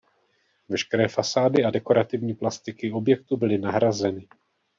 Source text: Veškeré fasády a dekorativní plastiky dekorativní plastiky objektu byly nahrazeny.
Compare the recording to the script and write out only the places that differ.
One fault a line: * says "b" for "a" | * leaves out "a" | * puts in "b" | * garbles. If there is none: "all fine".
* leaves out "dekorativní plastiky"